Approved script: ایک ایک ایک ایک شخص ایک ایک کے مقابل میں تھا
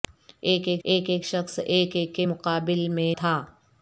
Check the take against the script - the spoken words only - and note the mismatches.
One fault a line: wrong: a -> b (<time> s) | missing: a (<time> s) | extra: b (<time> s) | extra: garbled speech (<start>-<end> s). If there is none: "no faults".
no faults